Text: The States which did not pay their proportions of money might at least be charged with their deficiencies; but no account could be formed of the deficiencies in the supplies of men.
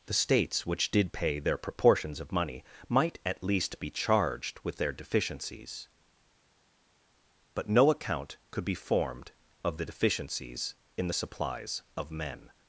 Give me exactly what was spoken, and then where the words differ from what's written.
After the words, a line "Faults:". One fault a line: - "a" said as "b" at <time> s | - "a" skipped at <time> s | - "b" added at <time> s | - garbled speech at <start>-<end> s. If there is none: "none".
The States which did pay their proportions of money might at least be charged with their deficiencies; but no account could be formed of the deficiencies in the supplies of men.
Faults:
- "not" skipped at 1.1 s